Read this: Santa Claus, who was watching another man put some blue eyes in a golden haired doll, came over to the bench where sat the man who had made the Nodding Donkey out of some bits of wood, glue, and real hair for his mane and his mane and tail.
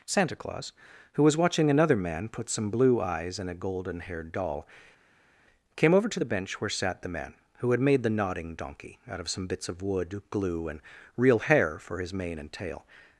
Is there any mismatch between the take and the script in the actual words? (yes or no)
yes